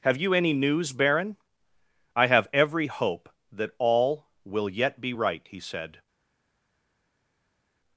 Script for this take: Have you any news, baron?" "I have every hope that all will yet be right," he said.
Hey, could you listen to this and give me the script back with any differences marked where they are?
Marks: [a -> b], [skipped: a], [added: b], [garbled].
Have you any news, baron?" "I have every hope that all will yet be right," he said.